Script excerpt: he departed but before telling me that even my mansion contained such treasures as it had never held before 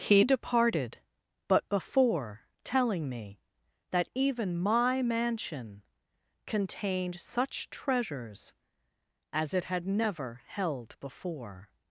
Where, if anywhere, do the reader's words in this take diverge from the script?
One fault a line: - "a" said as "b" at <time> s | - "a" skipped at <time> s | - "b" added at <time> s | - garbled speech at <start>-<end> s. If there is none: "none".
none